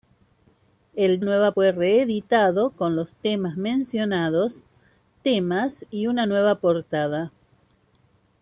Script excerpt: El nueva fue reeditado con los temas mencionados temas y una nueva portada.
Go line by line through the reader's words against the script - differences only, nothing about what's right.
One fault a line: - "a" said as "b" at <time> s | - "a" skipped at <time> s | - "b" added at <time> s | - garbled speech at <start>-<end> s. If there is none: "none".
none